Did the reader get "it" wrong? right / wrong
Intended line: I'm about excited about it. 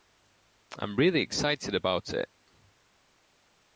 right